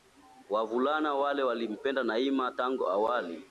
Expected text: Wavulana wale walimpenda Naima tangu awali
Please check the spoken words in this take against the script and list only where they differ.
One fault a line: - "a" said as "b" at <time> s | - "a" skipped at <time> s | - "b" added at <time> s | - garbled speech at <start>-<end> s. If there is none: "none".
none